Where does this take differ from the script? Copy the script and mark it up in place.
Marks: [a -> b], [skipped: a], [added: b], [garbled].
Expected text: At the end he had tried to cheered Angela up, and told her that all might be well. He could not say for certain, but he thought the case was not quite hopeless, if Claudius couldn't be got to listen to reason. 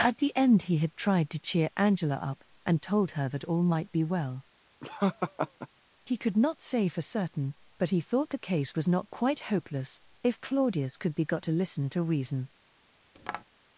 At the end he had tried to [cheered -> cheer] Angela up, and told her that all might be well. He could not say for certain, but he thought the case was not quite hopeless, if Claudius [couldn't -> could] be got to listen to reason.